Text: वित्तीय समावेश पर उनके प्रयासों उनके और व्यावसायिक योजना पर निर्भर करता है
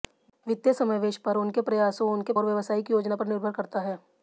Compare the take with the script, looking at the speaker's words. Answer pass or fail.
pass